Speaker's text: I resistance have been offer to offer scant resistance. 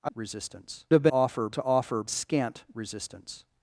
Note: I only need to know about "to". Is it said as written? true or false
true